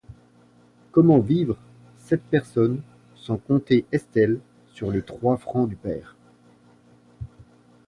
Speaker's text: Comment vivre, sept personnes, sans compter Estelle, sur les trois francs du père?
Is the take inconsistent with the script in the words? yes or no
no